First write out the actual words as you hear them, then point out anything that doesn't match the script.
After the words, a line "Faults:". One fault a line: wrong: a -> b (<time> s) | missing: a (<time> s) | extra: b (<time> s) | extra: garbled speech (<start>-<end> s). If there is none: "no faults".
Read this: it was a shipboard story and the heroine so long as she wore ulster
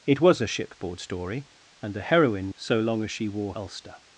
it was a shipboard story and the heroine so long as she wore ulster
Faults:
no faults